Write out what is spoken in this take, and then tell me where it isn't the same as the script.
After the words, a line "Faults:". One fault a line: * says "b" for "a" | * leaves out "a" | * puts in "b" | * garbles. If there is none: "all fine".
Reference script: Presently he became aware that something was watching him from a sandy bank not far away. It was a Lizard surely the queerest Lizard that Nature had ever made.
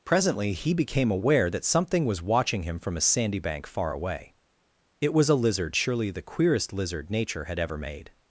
Presently he became aware that something was watching him from a sandy bank far away. It was a Lizard surely the queerest Lizard Nature had ever made.
Faults:
* leaves out "not"
* leaves out "that"